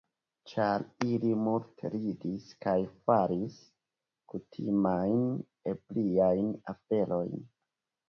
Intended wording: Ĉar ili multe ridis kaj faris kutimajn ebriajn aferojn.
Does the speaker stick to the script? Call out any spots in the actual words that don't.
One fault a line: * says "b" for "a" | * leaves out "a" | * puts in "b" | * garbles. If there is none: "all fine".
all fine